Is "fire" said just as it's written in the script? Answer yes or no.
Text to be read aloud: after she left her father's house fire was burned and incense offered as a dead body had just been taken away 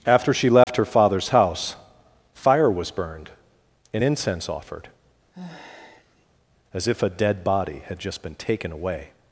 yes